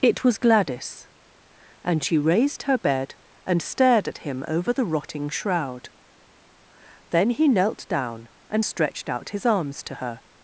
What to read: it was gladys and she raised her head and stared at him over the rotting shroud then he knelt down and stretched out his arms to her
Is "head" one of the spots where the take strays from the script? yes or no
yes